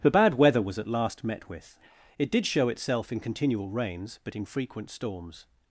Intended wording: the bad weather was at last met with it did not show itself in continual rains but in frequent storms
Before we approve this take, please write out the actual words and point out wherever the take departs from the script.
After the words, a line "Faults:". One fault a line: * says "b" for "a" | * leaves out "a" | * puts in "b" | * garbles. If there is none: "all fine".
the bad weather was at last met with it did show itself in continual rains but in frequent storms
Faults:
* leaves out "not"